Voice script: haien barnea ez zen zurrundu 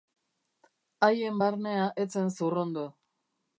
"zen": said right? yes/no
yes